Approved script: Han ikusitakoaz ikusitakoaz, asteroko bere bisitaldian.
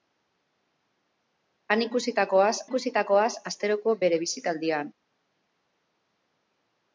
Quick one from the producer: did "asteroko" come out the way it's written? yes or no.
yes